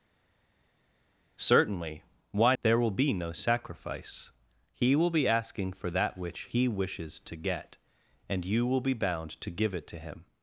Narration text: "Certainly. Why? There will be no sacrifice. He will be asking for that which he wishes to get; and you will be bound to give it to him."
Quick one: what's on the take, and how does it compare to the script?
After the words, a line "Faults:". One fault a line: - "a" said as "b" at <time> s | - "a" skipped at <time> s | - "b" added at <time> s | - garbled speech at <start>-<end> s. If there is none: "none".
"Certainly. Why? There will be no sacrifice. He will be asking for that which he wishes to get; and you will be bound to give it to him."
Faults:
none